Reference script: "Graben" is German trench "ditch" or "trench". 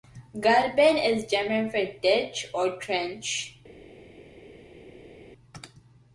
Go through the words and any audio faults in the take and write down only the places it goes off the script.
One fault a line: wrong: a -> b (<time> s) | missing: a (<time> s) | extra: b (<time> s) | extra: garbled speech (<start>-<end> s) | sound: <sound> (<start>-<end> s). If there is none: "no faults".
wrong: trench -> for (1.7 s)